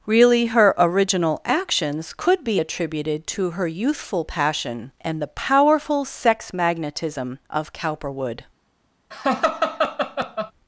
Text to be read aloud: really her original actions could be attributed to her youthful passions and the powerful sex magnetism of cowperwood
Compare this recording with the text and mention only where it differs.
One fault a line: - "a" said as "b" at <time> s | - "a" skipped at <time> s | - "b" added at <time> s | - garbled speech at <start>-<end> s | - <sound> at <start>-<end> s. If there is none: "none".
- "passions" said as "passion" at 4.2 s
- laugh at 9.1-10.5 s